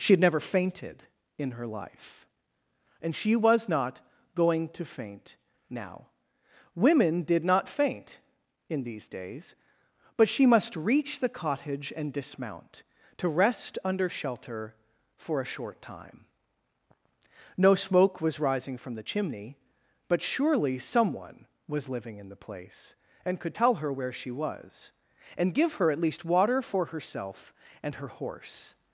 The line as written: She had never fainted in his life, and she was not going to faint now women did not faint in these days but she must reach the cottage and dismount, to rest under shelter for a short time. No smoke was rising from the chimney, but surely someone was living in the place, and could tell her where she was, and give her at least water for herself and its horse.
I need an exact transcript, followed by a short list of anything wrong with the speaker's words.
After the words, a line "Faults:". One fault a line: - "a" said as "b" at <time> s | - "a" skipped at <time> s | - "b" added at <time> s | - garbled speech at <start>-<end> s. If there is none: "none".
She had never fainted in her life, and she was not going to faint now women did not faint in these days but she must reach the cottage and dismount, to rest under shelter for a short time. No smoke was rising from the chimney, but surely someone was living in the place, and could tell her where she was, and give her at least water for herself and her horse.
Faults:
- "his" said as "her" at 1.5 s
- "its" said as "her" at 28.0 s